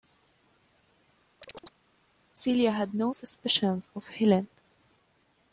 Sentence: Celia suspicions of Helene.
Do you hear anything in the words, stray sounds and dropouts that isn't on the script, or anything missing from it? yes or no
yes